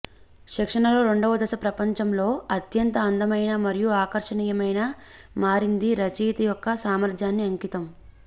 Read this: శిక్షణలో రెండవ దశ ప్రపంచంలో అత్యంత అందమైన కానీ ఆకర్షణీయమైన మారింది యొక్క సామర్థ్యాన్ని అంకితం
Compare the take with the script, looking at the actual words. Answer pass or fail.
fail